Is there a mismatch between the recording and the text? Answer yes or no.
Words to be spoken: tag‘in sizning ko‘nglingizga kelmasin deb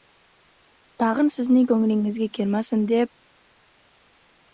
no